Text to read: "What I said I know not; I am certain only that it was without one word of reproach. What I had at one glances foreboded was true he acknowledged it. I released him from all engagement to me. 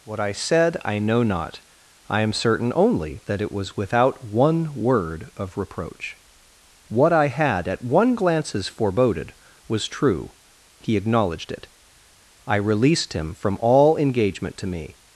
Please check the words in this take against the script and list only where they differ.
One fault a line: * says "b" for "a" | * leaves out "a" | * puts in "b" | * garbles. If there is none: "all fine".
all fine